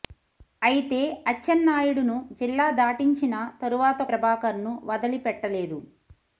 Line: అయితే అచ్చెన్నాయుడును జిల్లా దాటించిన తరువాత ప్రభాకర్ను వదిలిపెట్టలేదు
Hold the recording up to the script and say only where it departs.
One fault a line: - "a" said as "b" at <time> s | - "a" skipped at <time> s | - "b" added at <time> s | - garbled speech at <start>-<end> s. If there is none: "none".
none